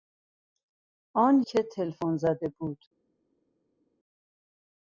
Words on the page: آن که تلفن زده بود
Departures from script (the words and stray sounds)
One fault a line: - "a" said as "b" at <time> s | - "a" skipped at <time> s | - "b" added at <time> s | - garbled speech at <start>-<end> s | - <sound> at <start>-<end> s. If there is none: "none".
none